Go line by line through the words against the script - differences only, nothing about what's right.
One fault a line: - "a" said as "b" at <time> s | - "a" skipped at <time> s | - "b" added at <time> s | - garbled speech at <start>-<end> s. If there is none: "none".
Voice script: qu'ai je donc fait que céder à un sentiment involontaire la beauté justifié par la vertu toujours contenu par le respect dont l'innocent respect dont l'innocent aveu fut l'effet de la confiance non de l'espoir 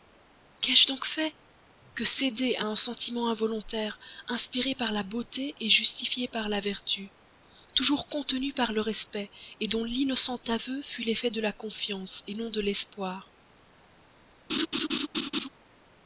- "inspiré par" added at 4.3 s
- "respect dont l'innocent" skipped at 10.4 s